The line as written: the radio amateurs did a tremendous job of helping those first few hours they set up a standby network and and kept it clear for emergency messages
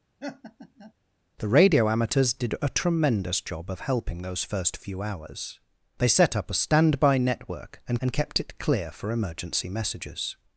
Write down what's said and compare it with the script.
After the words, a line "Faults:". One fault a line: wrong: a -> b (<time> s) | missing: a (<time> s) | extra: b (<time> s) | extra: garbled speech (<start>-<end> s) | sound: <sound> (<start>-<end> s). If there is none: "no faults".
the radio amateurs did a tremendous job of helping those first few hours they set up a standby network and and kept it clear for emergency messages
Faults:
sound: laugh (0.2-0.9 s)